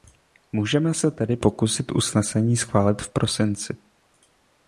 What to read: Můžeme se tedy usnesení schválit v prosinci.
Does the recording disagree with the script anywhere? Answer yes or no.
yes